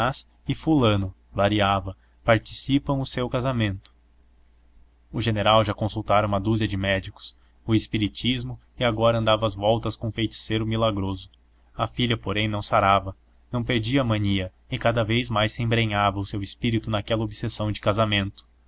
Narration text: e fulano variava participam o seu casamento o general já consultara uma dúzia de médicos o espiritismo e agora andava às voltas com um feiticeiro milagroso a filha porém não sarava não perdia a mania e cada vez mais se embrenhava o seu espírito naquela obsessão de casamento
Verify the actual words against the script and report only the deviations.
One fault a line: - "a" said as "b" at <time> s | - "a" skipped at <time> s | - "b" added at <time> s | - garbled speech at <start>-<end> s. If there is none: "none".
none